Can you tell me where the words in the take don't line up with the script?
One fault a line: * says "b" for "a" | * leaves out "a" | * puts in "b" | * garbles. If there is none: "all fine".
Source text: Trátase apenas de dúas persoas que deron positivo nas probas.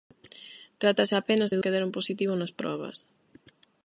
* leaves out "dúas persoas"